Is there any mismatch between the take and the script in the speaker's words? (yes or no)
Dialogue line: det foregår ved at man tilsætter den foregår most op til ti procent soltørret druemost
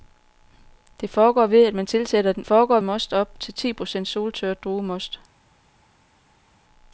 no